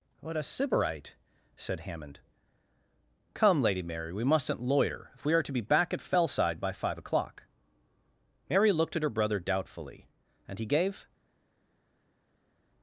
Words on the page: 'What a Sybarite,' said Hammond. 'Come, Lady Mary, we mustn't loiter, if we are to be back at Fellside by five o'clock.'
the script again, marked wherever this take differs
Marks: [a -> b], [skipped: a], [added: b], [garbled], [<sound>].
'What a Sybarite,' said Hammond. 'Come, Lady Mary, we mustn't loiter, if we are to be back at Fellside by five o'clock.' [added: Mary looked at her brother doubtfully and he gave]